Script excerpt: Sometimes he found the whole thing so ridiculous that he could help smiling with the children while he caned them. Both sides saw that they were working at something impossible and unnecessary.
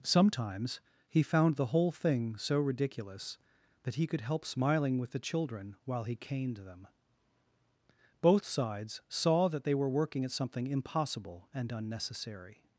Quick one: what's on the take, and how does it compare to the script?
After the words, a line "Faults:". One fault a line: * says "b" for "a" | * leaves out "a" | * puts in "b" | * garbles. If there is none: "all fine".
Sometimes he found the whole thing so ridiculous that he could help smiling with the children while he caned them. Both sides saw that they were working at something impossible and unnecessary.
Faults:
all fine